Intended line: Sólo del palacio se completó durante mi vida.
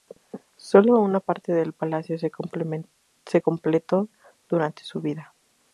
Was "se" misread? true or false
false